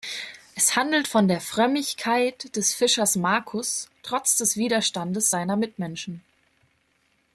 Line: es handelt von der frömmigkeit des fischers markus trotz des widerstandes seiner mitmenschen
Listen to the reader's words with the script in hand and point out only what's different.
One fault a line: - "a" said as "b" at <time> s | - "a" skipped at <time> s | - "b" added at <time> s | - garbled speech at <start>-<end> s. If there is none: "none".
none